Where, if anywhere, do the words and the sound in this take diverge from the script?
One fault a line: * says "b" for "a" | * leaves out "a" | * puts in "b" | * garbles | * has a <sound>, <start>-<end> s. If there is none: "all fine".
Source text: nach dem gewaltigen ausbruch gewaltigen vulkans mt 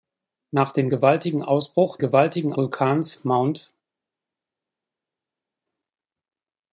all fine